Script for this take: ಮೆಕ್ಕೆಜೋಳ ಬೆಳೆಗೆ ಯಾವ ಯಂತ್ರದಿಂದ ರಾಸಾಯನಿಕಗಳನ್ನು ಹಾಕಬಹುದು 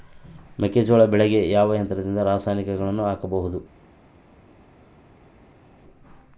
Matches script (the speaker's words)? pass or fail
pass